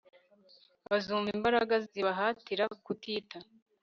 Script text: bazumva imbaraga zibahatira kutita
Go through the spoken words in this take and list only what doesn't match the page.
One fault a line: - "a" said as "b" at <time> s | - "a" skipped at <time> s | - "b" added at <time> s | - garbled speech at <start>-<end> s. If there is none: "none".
none